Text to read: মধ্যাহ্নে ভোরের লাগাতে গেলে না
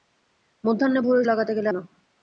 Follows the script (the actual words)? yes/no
yes